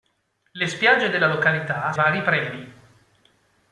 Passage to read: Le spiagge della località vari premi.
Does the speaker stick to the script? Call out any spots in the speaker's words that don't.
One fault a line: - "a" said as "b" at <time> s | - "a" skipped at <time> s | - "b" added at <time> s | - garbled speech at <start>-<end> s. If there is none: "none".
none